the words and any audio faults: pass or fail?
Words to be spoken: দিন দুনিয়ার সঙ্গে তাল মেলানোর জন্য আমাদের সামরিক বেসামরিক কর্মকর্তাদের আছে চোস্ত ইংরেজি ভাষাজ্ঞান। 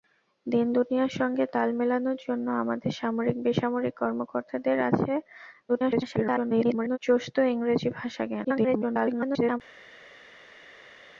fail